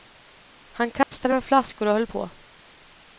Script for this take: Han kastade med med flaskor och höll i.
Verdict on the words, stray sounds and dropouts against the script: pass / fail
fail